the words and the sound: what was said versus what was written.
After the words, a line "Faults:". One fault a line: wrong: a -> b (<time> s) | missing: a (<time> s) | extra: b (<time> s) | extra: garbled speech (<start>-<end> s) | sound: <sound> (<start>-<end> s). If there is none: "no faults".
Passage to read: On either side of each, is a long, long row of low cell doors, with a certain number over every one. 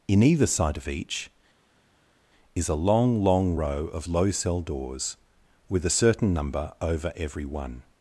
In either side of each, is a long, long row of low cell doors, with a certain number over every one.
Faults:
wrong: On -> In (0.1 s)